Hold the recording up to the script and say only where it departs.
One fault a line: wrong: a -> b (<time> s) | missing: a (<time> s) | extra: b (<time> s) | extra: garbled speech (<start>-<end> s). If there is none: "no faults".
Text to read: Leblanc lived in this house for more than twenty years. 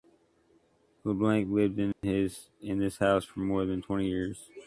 no faults